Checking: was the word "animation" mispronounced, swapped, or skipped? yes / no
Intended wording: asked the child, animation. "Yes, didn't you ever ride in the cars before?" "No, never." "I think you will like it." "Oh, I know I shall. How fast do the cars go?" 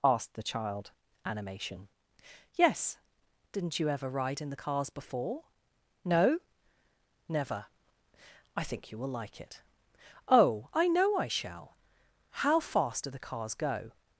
no